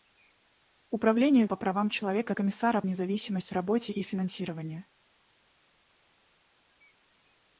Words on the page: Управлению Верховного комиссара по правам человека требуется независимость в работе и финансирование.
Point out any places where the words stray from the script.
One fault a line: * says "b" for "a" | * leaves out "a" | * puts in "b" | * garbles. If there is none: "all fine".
* leaves out "Верховного комиссара"
* says "комиссара" for "требуется"